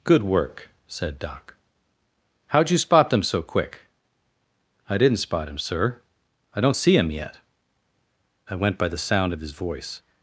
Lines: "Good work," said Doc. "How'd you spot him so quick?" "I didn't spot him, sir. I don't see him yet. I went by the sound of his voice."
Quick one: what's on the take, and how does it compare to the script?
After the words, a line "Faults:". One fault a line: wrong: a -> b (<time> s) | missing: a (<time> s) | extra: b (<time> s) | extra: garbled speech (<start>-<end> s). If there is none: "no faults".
"Good work," said Doc. "How'd you spot them so quick?" "I didn't spot him, sir. I don't see him yet. I went by the sound of his voice."
Faults:
wrong: him -> them (3.1 s)